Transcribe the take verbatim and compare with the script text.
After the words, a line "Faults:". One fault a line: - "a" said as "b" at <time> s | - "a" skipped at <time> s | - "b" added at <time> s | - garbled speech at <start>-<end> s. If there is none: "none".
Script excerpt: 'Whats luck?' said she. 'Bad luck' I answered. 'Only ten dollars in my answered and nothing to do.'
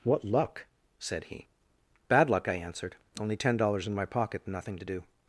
'What luck?' said he. 'Bad luck' I answered. 'Only ten dollars in my pocket and nothing to do.'
Faults:
- "Whats" said as "What" at 0.0 s
- "she" said as "he" at 1.2 s
- "answered" said as "pocket" at 4.0 s